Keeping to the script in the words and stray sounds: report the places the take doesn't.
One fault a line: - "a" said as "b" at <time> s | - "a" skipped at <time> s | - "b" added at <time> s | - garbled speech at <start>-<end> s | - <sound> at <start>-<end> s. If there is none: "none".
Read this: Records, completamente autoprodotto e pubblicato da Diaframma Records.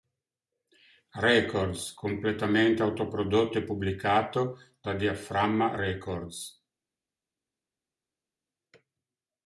none